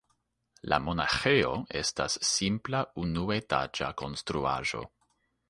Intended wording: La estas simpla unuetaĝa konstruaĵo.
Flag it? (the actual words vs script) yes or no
yes